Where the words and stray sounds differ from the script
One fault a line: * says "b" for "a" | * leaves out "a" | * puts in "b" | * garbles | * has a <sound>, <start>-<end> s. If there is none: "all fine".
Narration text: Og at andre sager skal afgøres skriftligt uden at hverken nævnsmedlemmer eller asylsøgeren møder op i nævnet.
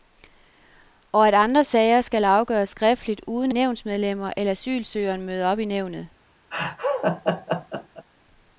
* leaves out "at hverken"
* has a laugh, 6.5-8.1 s